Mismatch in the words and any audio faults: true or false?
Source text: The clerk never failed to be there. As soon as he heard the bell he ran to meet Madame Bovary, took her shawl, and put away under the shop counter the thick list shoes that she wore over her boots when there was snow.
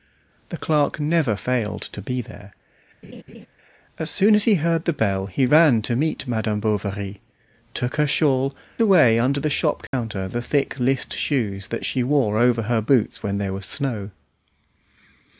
true